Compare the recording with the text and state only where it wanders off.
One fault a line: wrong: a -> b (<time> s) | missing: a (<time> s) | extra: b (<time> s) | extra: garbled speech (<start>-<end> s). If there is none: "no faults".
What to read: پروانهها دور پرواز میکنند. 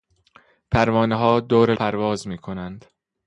no faults